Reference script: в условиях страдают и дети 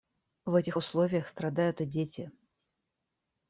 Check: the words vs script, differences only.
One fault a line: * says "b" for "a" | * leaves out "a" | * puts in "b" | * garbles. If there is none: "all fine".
* puts in "этих"